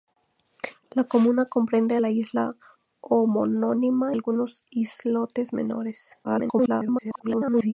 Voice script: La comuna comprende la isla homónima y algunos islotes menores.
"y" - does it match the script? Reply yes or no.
no